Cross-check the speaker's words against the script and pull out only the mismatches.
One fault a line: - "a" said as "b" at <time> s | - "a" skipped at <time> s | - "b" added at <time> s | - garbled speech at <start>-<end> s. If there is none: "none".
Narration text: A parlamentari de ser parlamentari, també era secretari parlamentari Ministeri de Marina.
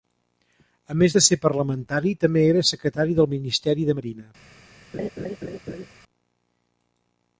- "parlamentari" said as "més" at 1.0 s
- "parlamentari" said as "del" at 3.2 s